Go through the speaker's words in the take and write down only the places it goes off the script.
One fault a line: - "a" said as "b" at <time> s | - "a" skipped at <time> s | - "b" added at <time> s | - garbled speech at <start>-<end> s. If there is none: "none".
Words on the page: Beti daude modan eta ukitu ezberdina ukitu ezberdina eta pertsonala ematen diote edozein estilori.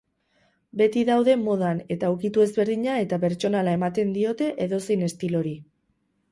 - "ukitu ezberdina" skipped at 3.0 s